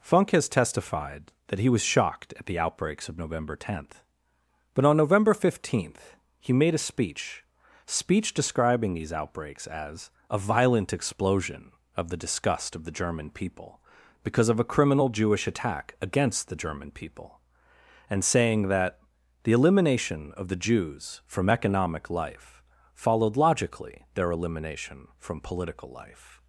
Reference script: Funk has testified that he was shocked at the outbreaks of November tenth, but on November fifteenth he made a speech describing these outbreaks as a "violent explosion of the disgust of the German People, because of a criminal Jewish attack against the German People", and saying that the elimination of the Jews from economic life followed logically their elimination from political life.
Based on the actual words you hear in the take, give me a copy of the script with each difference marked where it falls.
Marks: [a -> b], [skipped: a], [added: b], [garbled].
Funk has testified that he was shocked at the outbreaks of November tenth, but on November fifteenth he made a speech [added: speech] describing these outbreaks as a "violent explosion of the disgust of the German People, because of a criminal Jewish attack against the German People", and saying that the elimination of the Jews from economic life followed logically their elimination from political life.